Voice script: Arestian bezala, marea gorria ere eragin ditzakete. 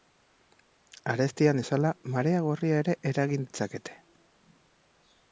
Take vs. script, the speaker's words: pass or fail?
pass